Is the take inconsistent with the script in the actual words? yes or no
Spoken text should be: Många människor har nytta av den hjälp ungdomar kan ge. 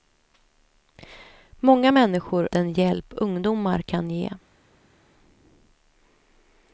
yes